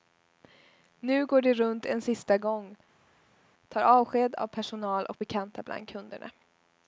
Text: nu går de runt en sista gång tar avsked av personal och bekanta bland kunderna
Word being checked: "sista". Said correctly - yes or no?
yes